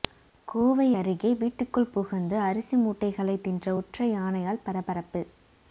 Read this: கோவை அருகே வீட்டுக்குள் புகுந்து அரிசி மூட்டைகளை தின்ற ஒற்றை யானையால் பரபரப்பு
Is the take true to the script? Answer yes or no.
yes